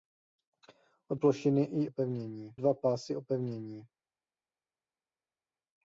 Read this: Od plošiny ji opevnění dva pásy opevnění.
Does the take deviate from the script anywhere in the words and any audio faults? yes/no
no